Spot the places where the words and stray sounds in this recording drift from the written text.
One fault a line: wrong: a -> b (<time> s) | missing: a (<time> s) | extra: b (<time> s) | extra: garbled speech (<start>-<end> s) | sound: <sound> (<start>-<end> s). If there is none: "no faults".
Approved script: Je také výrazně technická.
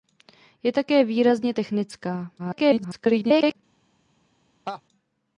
extra: garbled speech (2.4-3.6 s)
sound: laugh (4.7-4.8 s)